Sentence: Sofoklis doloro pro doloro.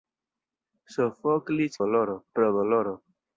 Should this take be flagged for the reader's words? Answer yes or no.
no